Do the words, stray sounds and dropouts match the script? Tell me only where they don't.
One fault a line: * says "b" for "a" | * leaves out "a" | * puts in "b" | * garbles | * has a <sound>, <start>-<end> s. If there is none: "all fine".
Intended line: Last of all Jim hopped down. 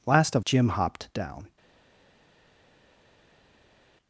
* leaves out "all"